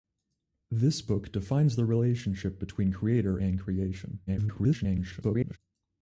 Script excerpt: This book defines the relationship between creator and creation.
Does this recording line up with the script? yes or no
no